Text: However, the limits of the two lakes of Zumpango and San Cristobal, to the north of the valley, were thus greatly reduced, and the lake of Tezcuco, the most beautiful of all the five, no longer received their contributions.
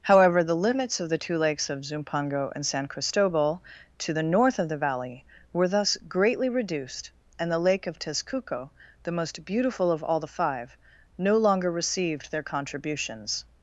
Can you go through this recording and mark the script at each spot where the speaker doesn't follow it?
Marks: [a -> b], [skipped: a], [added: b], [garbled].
However, the limits of the two lakes of Zumpango and San Cristobal, to the north of the valley, were thus greatly reduced, and the lake of Tezcuco, the most beautiful of all the five, no longer received their contributions.